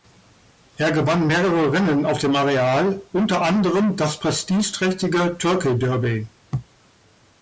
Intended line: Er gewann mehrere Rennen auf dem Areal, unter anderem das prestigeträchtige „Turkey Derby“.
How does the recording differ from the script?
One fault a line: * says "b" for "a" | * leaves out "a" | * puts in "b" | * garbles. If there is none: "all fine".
all fine